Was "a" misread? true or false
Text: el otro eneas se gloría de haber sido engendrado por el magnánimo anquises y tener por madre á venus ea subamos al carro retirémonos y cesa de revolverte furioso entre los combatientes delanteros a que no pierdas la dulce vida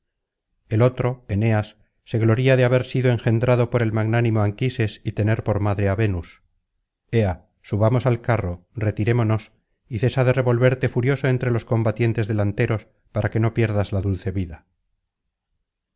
true